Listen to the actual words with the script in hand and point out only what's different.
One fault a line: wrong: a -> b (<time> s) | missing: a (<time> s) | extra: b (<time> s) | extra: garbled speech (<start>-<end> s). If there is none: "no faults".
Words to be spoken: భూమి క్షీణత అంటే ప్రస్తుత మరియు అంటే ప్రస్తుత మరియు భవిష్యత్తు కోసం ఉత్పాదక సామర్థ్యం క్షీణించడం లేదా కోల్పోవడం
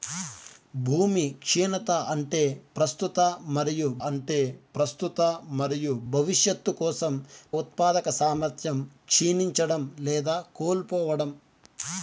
no faults